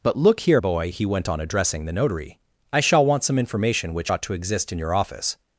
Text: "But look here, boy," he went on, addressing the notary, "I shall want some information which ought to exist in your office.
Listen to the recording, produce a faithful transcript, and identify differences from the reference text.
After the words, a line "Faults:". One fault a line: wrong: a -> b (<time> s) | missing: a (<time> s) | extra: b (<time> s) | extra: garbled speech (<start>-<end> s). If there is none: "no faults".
"But look here, boy," he went on, addressing the notary, "I shall want some information which ought to exist in your office.
Faults:
no faults